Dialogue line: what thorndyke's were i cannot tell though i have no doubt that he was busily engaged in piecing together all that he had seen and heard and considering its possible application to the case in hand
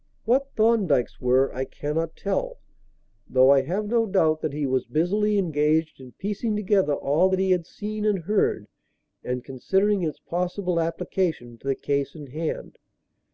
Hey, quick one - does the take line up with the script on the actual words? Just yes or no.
yes